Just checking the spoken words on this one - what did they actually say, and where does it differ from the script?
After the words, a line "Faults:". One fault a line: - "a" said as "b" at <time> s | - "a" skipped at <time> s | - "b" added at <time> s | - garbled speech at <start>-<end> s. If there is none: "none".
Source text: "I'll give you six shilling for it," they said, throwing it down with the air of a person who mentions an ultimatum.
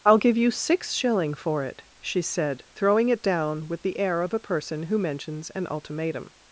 "I'll give you six shilling for it," she said, throwing it down with the air of a person who mentions an ultimatum.
Faults:
- "they" said as "she" at 2.0 s